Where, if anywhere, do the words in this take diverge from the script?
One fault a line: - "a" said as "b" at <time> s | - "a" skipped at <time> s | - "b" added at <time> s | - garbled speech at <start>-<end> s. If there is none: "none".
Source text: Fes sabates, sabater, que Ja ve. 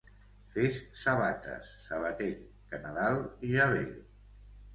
- "Nadal" added at 2.8 s